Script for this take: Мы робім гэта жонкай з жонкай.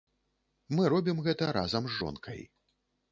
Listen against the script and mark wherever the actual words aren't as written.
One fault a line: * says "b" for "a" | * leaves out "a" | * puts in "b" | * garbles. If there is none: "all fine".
* says "разам" for "жонкай"